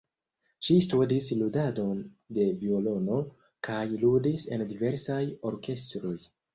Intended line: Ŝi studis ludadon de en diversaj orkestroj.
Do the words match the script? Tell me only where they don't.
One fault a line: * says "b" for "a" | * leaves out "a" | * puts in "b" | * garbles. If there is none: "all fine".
* puts in "violono kaj ludis"